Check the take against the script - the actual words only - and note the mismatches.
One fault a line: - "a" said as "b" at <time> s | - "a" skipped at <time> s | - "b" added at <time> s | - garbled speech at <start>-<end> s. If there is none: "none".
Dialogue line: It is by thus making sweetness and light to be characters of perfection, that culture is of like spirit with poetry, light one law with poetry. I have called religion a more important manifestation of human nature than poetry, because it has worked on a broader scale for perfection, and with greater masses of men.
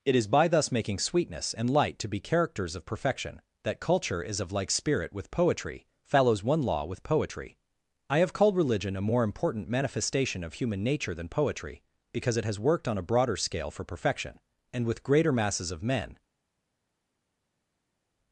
- "light" said as "follows" at 6.0 s